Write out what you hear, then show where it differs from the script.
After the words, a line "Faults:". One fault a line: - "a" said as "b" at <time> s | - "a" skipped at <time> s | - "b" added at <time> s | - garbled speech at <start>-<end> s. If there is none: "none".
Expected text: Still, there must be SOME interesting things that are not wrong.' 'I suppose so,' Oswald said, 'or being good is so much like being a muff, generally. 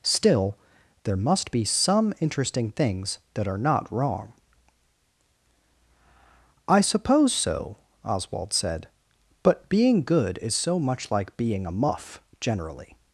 Still, there must be SOME interesting things that are not wrong.' 'I suppose so,' Oswald said, 'but being good is so much like being a muff, generally.
Faults:
- "or" said as "but" at 9.4 s